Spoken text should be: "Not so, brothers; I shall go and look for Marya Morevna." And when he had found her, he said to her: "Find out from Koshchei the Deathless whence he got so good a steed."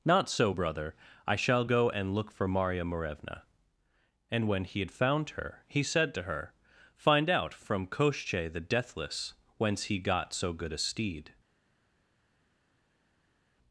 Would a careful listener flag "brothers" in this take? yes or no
yes